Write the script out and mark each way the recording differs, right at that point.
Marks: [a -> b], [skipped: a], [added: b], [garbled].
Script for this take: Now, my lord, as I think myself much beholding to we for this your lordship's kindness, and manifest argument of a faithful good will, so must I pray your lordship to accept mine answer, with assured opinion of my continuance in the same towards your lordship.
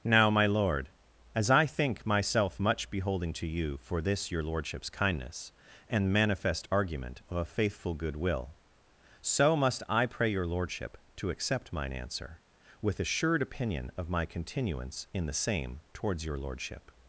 Now, my lord, as I think myself much beholding to [we -> you] for this your lordship's kindness, and manifest argument of a faithful good will, so must I pray your lordship to accept mine answer, with assured opinion of my continuance in the same towards your lordship.